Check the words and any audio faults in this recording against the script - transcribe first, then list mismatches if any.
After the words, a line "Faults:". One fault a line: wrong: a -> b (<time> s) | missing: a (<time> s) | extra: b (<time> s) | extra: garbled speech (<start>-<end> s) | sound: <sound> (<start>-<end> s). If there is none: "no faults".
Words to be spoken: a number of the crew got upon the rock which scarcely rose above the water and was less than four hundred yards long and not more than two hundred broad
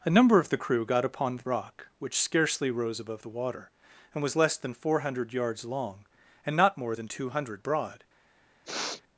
a number of the crew got upon the rock which scarcely rose above the water and was less than four hundred yards long and not more than two hundred broad
Faults:
sound: sniff (8.6-9.0 s)